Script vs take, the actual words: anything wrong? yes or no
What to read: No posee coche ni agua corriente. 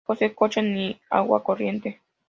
no